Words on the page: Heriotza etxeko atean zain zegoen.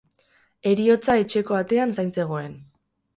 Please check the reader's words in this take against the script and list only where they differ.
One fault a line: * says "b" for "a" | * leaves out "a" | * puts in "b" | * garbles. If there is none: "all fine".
all fine